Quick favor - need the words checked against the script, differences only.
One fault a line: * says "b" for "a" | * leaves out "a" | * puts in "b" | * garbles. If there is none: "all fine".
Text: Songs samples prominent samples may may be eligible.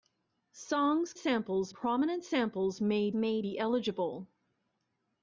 all fine